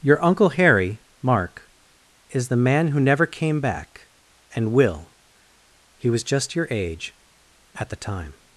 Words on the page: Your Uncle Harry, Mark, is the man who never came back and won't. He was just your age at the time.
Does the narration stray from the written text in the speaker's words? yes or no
yes